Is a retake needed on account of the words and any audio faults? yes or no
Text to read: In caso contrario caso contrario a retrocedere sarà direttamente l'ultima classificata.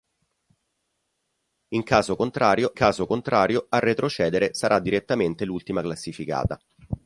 no